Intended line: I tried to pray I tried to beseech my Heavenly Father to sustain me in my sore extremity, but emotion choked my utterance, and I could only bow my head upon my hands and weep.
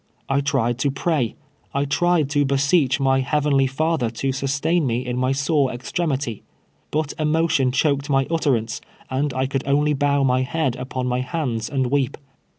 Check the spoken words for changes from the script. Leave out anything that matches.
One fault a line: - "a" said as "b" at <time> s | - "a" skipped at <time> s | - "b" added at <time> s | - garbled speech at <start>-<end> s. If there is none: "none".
none